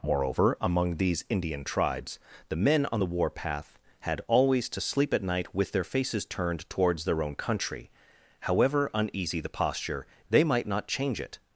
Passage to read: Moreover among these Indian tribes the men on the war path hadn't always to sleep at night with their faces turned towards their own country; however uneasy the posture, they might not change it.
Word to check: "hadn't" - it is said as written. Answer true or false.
false